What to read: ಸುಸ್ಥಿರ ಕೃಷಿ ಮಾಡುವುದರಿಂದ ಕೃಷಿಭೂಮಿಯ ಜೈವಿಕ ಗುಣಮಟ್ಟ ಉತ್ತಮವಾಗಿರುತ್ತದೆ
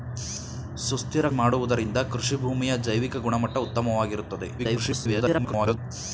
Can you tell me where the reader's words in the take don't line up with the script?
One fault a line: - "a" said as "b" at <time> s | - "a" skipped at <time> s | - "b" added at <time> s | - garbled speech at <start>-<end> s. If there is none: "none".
- "ಕೃಷಿ" skipped at 1.3 s
- garbled speech at 4.6-5.8 s